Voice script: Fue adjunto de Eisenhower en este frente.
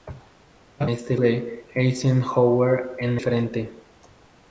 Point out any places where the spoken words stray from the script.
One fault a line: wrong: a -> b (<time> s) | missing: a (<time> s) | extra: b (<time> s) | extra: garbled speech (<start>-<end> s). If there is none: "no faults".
wrong: adjunto -> este (0.8 s)
missing: este (3.2 s)